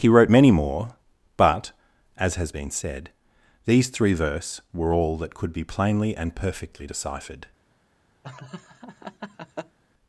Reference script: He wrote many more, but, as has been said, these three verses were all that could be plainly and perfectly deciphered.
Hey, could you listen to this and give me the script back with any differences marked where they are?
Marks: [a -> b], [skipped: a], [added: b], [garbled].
He wrote many more, but, as has been said, these three [verses -> verse] were all that could be plainly and perfectly deciphered.